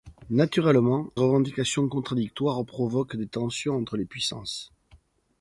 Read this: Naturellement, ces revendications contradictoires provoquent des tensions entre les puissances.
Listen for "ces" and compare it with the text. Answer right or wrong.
wrong